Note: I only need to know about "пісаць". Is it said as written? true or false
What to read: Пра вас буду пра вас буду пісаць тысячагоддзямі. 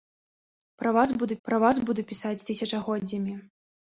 true